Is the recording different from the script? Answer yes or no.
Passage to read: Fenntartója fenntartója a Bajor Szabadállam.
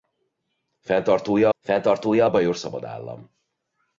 no